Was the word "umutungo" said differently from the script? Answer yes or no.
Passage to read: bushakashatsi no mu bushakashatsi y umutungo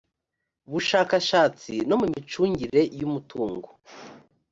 no